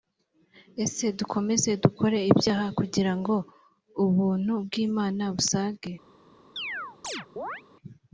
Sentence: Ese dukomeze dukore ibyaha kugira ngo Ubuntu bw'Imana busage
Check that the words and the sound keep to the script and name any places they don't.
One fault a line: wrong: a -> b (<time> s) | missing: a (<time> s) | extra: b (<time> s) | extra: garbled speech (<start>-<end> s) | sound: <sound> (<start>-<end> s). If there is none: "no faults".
sound: chirp (6.6-7.6 s)